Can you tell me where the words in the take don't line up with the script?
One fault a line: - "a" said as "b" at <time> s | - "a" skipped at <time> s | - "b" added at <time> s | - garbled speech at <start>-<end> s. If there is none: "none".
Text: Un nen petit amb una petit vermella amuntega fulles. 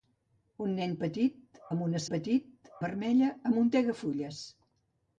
none